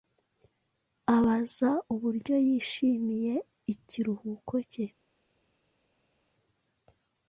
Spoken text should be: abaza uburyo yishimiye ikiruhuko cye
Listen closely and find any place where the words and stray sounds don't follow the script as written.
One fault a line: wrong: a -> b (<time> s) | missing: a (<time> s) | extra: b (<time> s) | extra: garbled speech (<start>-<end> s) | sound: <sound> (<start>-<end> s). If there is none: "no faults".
no faults